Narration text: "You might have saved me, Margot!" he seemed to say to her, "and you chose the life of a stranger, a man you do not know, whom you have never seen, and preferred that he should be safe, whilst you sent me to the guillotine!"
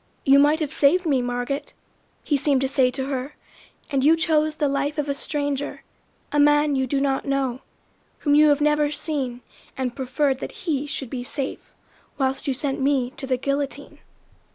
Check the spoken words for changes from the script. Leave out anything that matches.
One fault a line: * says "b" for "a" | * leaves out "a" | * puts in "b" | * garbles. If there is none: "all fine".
all fine